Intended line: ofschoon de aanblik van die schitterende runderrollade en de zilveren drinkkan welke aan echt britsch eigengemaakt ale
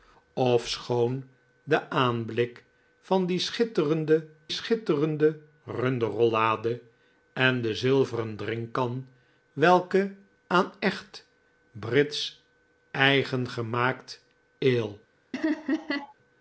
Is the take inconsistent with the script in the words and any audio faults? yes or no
yes